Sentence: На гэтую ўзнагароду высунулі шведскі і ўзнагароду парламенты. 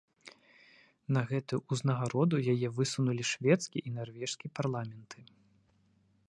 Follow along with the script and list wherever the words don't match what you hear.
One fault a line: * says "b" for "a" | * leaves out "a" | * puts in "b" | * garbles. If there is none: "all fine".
* puts in "яе"
* says "нарвежскі" for "ўзнагароду"